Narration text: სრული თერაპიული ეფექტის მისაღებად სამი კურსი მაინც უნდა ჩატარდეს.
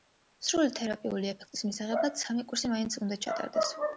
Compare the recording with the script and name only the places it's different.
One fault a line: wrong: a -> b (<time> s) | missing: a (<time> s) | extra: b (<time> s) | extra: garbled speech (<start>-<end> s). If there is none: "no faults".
no faults